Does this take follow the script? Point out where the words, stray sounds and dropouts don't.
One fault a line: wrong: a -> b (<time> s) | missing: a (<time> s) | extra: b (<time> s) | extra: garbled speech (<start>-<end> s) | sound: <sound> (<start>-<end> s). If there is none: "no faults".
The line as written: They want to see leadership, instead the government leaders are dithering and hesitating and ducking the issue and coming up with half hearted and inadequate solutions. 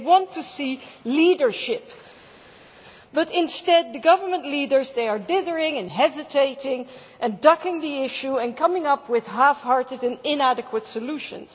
extra: but (3.1 s)